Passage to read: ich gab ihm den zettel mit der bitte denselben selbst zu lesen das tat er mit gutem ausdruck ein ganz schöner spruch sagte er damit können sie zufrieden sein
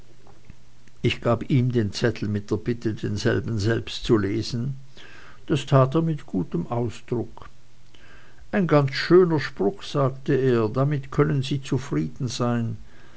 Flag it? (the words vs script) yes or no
no